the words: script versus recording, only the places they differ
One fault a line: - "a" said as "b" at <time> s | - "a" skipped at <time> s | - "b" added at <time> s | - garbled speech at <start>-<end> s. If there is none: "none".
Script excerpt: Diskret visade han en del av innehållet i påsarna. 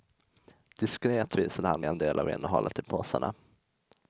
none